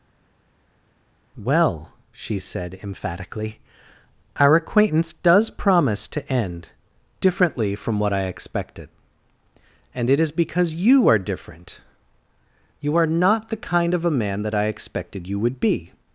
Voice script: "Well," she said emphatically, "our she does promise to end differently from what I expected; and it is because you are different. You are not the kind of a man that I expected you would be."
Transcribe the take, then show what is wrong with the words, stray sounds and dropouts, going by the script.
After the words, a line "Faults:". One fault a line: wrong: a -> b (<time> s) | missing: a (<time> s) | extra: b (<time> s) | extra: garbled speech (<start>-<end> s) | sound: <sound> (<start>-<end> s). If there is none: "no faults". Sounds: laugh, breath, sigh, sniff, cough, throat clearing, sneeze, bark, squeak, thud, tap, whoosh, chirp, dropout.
"Well," she said emphatically, "our acquaintance does promise to end differently from what I expected; and it is because you are different. You are not the kind of a man that I expected you would be."
Faults:
wrong: she -> acquaintance (4.6 s)